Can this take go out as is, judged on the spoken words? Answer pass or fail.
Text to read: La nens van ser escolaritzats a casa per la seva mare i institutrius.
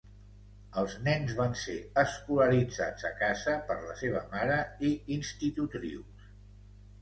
fail